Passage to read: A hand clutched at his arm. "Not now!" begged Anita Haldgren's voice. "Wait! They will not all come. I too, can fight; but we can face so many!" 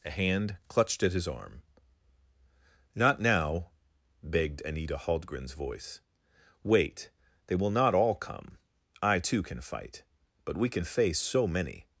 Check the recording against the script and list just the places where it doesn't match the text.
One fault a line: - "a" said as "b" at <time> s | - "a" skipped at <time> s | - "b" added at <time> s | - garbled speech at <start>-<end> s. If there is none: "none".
none